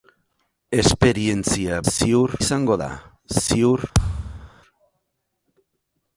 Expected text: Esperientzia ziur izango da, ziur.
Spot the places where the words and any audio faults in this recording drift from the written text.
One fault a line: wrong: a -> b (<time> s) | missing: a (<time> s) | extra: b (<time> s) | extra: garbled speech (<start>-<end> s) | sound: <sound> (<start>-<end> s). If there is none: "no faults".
sound: thud (3.9-4.5 s)